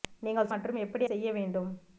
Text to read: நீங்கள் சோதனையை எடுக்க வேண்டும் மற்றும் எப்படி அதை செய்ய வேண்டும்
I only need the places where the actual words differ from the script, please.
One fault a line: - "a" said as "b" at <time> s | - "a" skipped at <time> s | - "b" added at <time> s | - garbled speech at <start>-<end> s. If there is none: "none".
- "சோதனையை எடுக்க வேண்டும்" skipped at 0.5 s
- "அதை" skipped at 1.1 s